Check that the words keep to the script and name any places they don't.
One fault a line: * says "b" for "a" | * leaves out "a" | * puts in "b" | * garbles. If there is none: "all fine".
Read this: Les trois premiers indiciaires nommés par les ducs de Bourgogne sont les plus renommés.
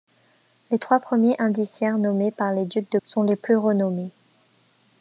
* leaves out "Bourgogne"